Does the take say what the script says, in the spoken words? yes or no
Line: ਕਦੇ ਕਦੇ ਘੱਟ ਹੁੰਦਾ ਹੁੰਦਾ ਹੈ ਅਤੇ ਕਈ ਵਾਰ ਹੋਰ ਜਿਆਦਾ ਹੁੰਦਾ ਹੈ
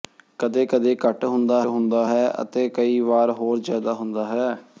yes